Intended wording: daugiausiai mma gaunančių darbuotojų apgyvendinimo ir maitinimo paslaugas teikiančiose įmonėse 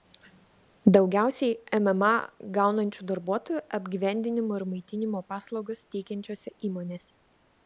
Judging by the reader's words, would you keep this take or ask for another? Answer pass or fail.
pass